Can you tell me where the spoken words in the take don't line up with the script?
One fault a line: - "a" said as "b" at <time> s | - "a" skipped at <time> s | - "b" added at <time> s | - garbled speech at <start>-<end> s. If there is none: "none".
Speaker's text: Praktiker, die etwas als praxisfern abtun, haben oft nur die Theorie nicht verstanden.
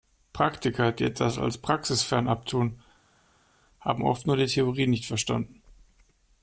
none